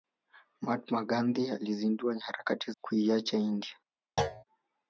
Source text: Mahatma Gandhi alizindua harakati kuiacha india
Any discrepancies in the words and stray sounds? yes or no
yes